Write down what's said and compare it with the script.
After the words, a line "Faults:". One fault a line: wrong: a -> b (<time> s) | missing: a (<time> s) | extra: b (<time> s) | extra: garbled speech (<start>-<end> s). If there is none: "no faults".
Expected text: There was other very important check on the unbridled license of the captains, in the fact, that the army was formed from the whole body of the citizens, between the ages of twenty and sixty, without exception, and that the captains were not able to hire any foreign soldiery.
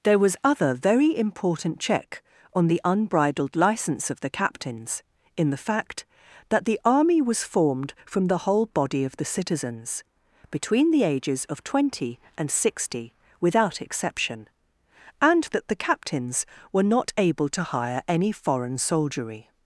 There was other very important check on the unbridled license of the captains, in the fact, that the army was formed from the whole body of the citizens, between the ages of twenty and sixty, without exception, and that the captains were not able to hire any foreign soldiery.
Faults:
no faults